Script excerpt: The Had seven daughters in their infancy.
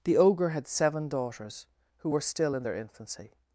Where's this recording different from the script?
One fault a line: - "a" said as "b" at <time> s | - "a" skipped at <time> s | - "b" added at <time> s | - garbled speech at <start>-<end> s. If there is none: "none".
- "Ogre" added at 0.2 s
- "who were still" added at 2.0 s